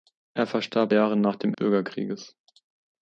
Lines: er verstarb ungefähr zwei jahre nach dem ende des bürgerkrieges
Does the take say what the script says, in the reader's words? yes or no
no